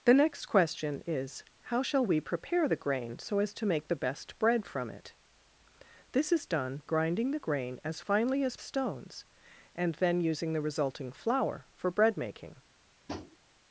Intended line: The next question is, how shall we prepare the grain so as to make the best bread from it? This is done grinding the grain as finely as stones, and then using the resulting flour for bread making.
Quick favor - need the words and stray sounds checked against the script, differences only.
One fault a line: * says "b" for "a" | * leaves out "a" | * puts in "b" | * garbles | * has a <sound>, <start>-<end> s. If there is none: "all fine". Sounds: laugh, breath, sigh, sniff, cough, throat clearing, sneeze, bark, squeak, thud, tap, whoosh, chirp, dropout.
* has a tap, 13.1-13.4 s